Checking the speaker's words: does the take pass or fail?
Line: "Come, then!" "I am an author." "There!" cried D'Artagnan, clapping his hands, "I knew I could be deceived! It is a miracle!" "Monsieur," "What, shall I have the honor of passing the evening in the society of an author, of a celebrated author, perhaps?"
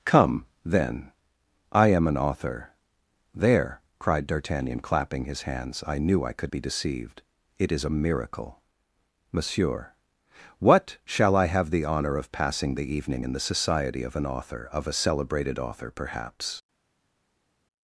pass